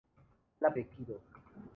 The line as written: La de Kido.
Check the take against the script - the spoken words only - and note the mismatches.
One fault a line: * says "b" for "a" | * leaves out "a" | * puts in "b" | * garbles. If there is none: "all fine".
all fine